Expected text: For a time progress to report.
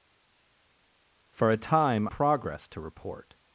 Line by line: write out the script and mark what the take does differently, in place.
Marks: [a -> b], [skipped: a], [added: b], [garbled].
For a time progress to report.